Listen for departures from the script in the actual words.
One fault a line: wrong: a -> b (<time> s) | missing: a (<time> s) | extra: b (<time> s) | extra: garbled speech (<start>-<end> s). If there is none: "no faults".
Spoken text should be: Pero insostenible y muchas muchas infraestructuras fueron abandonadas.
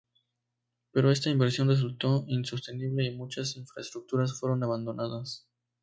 extra: esta inversión resultó (1.1 s)
missing: muchas (3.5 s)